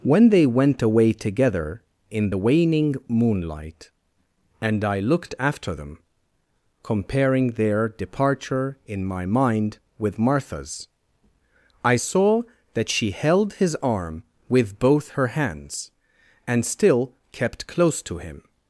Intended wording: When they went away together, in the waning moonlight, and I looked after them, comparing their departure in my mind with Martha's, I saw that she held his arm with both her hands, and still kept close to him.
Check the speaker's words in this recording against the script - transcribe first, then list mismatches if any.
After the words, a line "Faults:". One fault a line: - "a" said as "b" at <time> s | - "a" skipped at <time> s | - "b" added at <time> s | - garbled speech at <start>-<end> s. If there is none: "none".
When they went away together, in the waning moonlight, and I looked after them, comparing their departure in my mind with Martha's, I saw that she held his arm with both her hands, and still kept close to him.
Faults:
none